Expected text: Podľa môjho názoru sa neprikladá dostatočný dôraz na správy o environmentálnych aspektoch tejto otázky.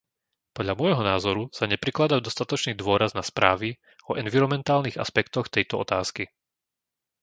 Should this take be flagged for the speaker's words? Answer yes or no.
no